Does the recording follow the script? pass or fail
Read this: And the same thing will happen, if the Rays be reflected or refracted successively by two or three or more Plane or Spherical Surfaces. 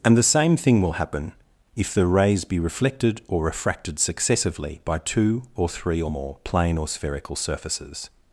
pass